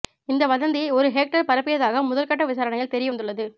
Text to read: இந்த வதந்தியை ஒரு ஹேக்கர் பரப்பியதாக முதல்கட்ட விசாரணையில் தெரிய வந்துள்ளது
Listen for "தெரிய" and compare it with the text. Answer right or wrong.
right